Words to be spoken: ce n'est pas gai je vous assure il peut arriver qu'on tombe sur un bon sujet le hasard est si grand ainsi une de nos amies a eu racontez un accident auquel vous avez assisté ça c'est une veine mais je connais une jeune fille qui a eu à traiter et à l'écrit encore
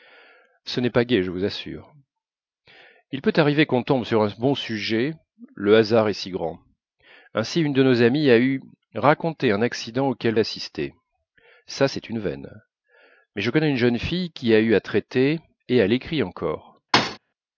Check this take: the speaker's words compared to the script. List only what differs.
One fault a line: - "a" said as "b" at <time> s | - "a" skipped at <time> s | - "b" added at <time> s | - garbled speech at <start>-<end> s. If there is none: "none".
- "vous avez" skipped at 10.3 s